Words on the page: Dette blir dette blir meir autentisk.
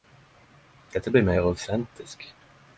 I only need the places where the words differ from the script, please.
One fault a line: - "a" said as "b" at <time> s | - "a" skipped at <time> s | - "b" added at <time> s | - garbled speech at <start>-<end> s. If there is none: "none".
- "dette blir" skipped at 1.2 s